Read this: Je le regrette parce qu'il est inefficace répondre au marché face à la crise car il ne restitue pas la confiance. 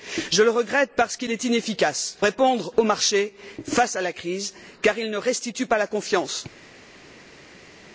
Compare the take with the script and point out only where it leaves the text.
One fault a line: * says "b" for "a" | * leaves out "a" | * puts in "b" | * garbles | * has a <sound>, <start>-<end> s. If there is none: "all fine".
all fine